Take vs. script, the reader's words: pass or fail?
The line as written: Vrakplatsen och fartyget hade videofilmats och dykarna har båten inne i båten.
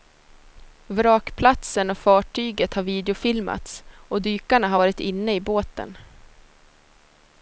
fail